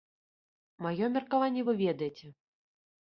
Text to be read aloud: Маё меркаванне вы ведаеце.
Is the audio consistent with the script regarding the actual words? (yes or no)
yes